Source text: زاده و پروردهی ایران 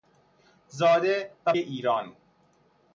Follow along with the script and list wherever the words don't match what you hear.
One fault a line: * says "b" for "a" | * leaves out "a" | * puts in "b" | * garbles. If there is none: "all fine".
* leaves out "پروردهی"